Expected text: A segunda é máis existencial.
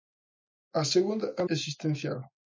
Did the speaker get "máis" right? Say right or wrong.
wrong